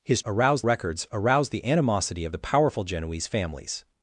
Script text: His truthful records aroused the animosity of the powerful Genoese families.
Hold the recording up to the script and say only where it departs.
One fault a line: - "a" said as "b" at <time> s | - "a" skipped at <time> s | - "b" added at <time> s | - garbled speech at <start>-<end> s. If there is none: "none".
- "truthful" said as "aroused" at 0.3 s